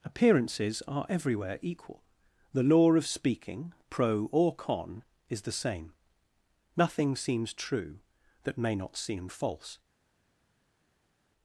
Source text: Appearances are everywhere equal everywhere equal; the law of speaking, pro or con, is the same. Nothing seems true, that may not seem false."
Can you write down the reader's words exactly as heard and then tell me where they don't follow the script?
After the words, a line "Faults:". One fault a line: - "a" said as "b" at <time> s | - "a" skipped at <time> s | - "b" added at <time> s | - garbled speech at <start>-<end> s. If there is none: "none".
Appearances are everywhere equal; the law of speaking, pro or con, is the same. Nothing seems true, that may not seem false."
Faults:
- "everywhere equal" skipped at 2.0 s